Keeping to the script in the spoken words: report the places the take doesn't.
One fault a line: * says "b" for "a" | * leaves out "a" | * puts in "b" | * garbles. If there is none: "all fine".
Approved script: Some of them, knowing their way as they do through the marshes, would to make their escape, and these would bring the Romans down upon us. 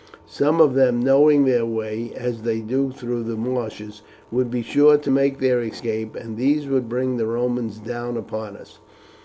* puts in "be sure"